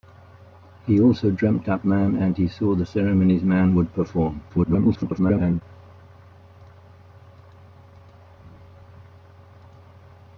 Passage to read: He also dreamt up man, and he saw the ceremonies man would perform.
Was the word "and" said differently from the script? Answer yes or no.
no